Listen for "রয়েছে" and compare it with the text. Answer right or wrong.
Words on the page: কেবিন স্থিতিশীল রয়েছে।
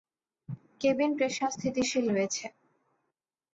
right